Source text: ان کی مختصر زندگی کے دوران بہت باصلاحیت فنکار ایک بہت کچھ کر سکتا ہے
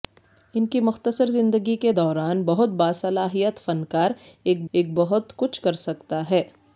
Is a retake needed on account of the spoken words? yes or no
yes